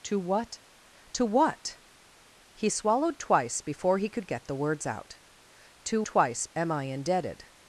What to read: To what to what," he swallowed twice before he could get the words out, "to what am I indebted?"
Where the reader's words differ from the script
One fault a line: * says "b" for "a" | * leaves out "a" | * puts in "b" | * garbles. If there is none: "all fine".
* says "twice" for "what"